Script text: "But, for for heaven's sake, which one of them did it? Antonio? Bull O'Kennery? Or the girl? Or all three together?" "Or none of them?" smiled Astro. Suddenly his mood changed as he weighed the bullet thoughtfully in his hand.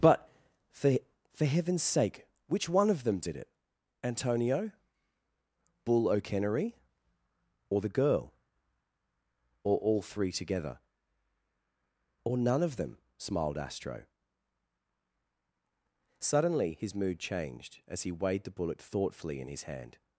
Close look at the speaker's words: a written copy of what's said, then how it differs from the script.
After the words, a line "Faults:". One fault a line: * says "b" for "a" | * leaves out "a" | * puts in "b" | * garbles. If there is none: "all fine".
"But, for for heaven's sake, which one of them did it? Antonio? Bull O'Kennery? Or the girl? Or all three together?" "Or none of them?" smiled Astro. Suddenly his mood changed as he weighed the bullet thoughtfully in his hand.
Faults:
all fine